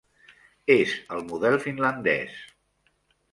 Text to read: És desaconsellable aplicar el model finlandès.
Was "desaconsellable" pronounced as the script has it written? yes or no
no